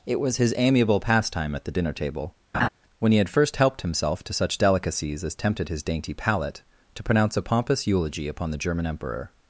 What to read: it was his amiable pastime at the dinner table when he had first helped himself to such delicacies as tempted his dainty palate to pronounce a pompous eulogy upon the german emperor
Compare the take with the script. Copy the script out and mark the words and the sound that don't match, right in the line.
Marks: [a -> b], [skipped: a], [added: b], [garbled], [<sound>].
it was his amiable pastime at the dinner table [laugh] when he had first helped himself to such delicacies as tempted his dainty palate to pronounce a pompous eulogy upon the german emperor